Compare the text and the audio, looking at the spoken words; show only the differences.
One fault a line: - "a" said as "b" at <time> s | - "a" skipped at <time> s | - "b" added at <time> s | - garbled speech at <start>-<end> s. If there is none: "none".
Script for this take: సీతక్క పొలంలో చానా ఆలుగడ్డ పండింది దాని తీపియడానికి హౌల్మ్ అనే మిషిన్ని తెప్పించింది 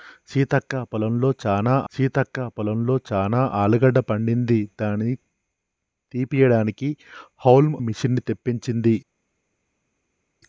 - "సీతక్క పొలంలో చానా" added at 1.9 s
- "అనే" skipped at 7.8 s